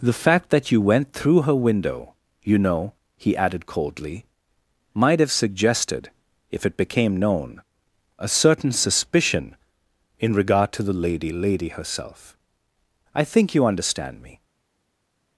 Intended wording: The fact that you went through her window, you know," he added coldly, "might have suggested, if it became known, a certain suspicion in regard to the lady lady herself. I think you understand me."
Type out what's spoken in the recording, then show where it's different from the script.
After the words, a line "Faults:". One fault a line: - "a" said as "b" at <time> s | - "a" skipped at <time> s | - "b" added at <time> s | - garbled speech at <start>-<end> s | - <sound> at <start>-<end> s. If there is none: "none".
The fact that you went through her window, you know," he added coldly, "might have suggested, if it became known, a certain suspicion in regard to the lady lady herself. I think you understand me."
Faults:
none